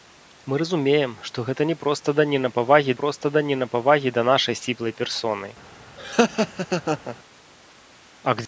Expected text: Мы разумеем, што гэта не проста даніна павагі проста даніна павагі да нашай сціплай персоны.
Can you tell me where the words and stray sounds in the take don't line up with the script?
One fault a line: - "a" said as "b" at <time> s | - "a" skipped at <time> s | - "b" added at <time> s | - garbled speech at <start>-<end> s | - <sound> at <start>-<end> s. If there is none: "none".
- laugh at 6.0-7.2 s